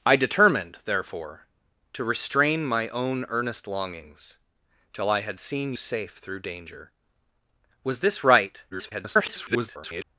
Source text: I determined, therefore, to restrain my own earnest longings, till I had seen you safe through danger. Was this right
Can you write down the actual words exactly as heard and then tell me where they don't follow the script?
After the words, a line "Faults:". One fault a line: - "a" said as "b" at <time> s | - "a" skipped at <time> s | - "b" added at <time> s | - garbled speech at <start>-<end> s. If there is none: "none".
I determined, therefore, to restrain my own earnest longings, till I had seen safe through danger. Was this right [garbled]
Faults:
- "you" skipped at 5.7 s
- garbled speech at 8.7-10.0 s